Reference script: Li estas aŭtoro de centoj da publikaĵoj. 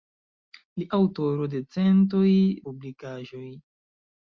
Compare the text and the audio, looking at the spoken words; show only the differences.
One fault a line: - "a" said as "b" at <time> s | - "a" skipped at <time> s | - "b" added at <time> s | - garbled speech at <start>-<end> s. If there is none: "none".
- "estas" skipped at 0.9 s
- "da" skipped at 2.2 s